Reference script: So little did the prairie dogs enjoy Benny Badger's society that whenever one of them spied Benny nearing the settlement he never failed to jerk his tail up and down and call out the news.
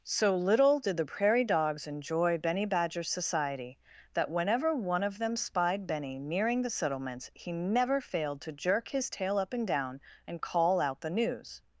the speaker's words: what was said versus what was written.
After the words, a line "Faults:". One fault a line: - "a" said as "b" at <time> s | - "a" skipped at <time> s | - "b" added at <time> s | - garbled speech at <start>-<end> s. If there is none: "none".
So little did the prairie dogs enjoy Benny Badger's society that whenever one of them spied Benny nearing the settlements he never failed to jerk his tail up and down and call out the news.
Faults:
- "settlement" said as "settlements" at 6.7 s